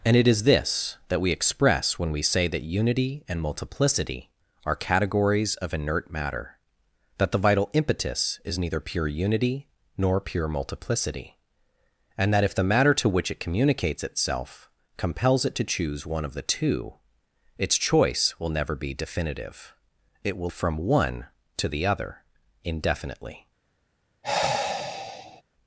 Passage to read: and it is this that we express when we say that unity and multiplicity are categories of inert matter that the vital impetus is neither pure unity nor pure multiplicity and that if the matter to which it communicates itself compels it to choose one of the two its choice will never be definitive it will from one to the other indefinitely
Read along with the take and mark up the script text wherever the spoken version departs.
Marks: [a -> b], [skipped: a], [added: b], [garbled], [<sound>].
and it is this that we express when we say that unity and multiplicity are categories of inert matter that the vital impetus is neither pure unity nor pure multiplicity and that if the matter to which it communicates itself compels it to choose one of the two its choice will never be definitive it will from one to the other indefinitely [sigh]